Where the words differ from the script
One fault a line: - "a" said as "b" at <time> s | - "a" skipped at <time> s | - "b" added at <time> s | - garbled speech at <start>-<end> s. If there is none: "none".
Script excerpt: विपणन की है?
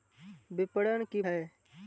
none